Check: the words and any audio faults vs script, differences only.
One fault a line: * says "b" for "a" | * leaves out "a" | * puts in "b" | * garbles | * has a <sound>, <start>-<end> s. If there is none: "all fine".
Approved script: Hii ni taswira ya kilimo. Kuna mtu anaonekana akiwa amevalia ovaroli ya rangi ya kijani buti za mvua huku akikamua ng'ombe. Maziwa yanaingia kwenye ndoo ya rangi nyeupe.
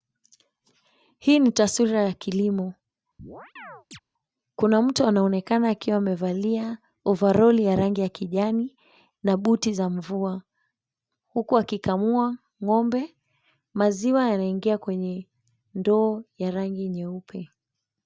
* has a chirp, 3.2-4.0 s
* puts in "na"